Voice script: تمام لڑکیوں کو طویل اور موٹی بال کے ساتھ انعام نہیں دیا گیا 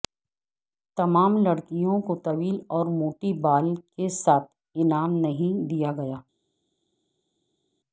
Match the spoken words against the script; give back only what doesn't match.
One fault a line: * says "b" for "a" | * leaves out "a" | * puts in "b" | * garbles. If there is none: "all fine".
all fine